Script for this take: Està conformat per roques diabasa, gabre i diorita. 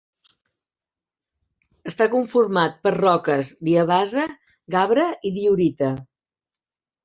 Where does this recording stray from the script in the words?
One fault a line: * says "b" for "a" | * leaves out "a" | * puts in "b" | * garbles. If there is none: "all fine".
all fine